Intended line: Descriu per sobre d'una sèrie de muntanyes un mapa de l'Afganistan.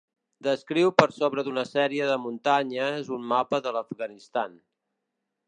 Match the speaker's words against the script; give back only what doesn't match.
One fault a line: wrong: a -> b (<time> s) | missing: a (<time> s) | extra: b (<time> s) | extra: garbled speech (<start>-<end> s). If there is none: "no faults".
no faults